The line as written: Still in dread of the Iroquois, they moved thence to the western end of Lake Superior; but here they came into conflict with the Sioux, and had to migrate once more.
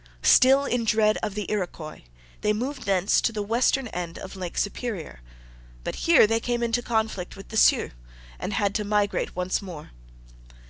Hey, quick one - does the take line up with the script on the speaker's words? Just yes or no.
yes